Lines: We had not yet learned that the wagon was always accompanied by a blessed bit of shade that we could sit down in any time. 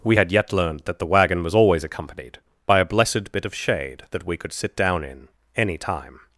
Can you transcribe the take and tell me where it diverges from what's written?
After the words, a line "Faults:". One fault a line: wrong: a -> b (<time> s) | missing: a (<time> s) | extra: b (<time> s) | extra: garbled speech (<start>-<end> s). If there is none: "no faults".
We had yet learned that the wagon was always accompanied by a blessed bit of shade that we could sit down in any time.
Faults:
missing: not (0.3 s)